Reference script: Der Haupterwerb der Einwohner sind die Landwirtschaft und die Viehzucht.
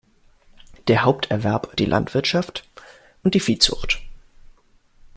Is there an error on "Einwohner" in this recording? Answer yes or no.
yes